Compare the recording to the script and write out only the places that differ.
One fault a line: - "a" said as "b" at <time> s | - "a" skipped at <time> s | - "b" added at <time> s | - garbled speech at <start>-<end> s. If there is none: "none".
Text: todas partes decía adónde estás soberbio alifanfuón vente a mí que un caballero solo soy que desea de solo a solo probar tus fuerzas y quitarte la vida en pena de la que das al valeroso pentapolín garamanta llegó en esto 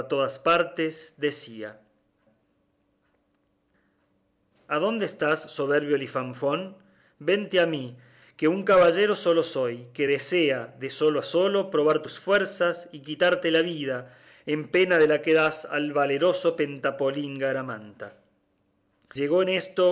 none